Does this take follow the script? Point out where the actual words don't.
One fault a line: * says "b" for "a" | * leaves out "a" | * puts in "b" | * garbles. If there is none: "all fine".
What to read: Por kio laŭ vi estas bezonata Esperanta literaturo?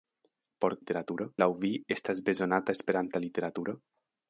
* says "literaturo" for "kio"